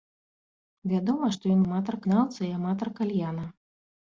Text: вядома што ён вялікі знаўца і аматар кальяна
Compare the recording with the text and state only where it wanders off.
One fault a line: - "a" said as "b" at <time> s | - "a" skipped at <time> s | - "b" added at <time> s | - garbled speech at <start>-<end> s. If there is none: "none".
- "вялікі" said as "аматар" at 1.6 s